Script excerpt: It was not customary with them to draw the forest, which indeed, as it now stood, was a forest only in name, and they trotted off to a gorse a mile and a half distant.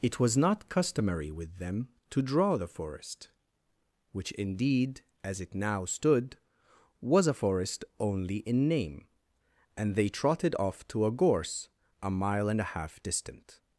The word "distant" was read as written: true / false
true